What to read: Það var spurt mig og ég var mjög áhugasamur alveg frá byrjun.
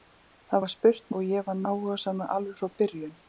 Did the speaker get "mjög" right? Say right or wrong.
wrong